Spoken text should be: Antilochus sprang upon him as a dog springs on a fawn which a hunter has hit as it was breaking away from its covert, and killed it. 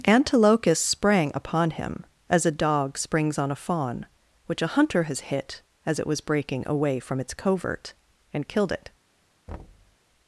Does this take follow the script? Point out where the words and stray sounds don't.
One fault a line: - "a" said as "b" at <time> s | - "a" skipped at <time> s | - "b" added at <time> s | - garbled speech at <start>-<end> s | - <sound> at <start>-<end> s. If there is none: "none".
- thud at 9.5-10.0 s